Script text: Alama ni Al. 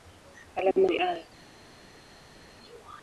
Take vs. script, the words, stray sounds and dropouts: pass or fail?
pass